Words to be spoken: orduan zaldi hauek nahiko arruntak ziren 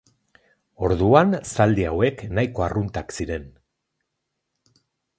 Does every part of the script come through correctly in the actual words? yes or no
yes